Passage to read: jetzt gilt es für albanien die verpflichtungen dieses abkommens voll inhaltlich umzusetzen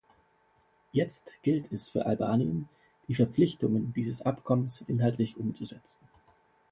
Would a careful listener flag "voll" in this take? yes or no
yes